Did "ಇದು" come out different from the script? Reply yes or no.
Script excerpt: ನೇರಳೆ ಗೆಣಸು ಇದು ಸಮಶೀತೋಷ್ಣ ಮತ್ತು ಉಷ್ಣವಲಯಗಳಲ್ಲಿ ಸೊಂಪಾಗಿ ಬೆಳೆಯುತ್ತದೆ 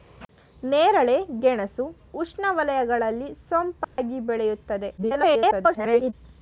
yes